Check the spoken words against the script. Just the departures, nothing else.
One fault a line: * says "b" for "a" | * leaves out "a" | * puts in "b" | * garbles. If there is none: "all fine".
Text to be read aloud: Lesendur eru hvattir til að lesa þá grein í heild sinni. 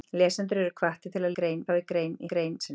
* says "grein" for "lesa"
* says "grein" for "heild"